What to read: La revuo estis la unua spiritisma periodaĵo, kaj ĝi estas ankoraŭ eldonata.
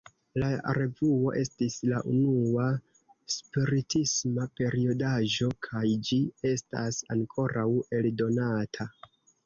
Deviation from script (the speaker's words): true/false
false